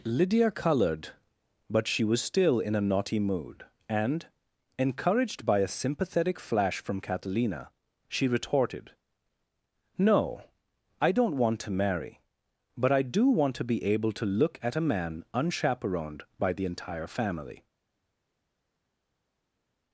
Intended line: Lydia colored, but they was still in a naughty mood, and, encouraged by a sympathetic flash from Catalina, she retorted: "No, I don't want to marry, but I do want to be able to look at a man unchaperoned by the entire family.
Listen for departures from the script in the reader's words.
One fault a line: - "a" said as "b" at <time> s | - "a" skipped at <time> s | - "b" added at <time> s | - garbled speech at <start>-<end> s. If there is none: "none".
- "they" said as "she" at 1.9 s